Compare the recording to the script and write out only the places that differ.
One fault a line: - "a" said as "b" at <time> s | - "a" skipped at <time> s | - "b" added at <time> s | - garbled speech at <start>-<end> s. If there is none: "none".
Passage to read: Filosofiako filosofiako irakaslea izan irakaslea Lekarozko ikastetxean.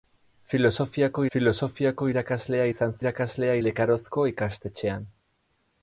none